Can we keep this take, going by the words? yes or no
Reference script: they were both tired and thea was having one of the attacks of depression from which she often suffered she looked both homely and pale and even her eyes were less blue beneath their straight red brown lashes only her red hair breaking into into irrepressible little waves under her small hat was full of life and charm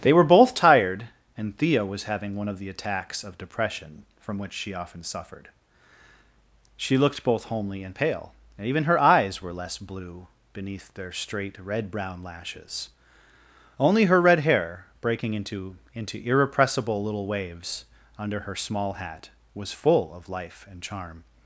yes